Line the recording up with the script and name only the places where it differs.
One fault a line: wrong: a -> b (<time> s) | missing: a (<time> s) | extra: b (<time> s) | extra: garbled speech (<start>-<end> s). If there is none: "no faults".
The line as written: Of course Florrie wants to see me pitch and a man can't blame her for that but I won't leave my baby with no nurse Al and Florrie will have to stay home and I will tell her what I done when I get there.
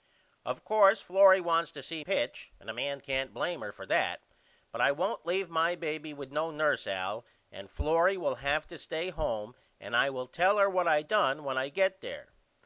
missing: me (2.0 s)